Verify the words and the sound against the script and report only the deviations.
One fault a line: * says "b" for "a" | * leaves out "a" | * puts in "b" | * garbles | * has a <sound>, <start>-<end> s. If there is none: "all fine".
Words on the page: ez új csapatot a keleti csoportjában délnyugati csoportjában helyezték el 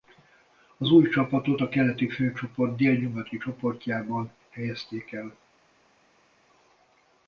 * says "az" for "ez"
* says "főcsoport" for "csoportjában"